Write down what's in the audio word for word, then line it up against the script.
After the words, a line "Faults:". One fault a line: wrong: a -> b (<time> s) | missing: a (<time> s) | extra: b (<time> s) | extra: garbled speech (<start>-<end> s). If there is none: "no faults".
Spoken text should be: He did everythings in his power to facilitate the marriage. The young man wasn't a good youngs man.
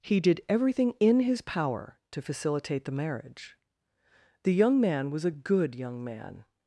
He did everything in his power to facilitate the marriage. The young man was a good young man.
Faults:
wrong: everythings -> everything (0.5 s)
wrong: wasn't -> was (5.1 s)
wrong: youngs -> young (5.7 s)